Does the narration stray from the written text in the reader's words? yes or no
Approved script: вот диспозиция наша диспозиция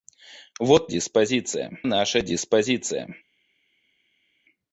no